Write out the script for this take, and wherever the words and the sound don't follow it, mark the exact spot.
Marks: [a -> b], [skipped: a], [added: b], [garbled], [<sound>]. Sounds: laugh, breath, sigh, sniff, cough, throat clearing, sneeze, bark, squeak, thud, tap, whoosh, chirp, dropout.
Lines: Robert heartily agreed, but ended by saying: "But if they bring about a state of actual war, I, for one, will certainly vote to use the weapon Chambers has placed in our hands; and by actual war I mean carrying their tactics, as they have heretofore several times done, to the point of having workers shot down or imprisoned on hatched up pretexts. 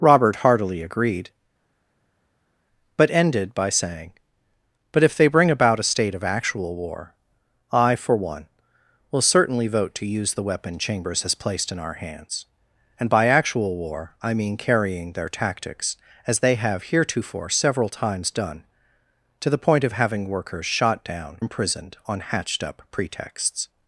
Robert heartily agreed, but ended by saying: "But if they bring about a state of actual war, I, for one, will certainly vote to use the weapon Chambers has placed in our hands; and by actual war I mean carrying their tactics, as they have heretofore several times done, to the point of having workers shot down [skipped: or] imprisoned on hatched up pretexts.